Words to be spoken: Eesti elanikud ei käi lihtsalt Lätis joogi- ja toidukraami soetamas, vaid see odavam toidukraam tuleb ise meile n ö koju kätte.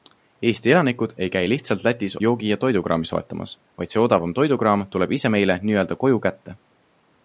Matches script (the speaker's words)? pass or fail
pass